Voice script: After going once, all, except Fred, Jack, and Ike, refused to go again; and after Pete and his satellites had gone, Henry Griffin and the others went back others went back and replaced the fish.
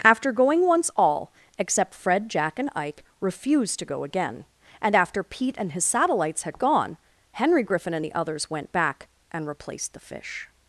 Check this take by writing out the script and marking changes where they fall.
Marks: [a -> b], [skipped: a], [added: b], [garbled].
After going once, all, except Fred, Jack, and Ike, refused to go again; and after Pete and his satellites had gone, Henry Griffin and the others went back [skipped: others went back] and replaced the fish.